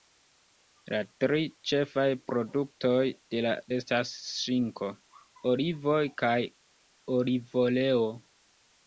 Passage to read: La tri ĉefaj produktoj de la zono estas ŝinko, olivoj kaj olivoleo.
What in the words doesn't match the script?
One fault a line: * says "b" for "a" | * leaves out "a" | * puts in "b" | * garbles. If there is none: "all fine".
* leaves out "zono"